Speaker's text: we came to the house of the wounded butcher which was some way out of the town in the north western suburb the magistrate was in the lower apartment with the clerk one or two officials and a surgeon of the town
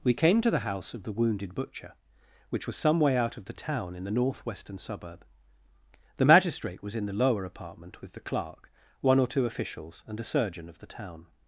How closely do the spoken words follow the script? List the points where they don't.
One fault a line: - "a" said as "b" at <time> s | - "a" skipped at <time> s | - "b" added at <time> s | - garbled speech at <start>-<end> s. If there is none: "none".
none